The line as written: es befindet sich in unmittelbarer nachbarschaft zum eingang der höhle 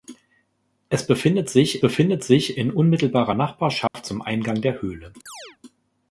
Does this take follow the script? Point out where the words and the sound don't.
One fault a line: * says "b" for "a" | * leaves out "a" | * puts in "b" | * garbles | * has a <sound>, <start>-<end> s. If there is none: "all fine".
* puts in "befindet sich"
* has a dropout, 3.9-3.9 s
* has a chirp, 5.3-5.6 s